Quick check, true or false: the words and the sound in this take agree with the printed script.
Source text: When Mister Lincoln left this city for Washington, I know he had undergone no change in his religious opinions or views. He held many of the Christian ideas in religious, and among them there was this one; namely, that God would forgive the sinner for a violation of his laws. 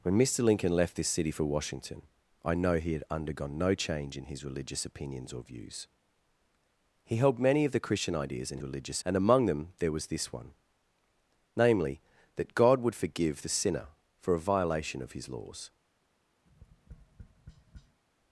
false